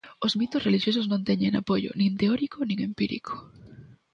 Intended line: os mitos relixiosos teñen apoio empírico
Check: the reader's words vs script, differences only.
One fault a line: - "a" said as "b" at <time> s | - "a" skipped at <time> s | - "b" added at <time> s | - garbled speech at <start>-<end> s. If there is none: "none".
- "non" added at 1.1 s
- "nin teórico nin" added at 2.0 s